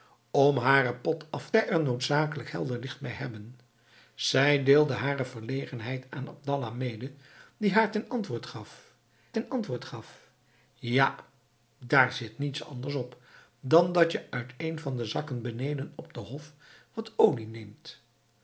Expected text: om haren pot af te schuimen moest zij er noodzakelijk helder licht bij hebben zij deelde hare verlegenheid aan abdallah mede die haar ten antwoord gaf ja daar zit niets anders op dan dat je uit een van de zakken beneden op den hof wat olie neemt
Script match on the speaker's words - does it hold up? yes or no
no